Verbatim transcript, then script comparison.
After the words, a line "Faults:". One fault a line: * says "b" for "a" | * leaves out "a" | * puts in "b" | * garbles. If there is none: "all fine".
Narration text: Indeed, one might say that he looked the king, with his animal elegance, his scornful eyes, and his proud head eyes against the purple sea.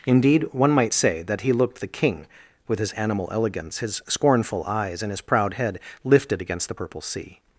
Indeed, one might say that he looked the king, with his animal elegance, his scornful eyes, and his proud head lifted against the purple sea.
Faults:
* says "lifted" for "eyes"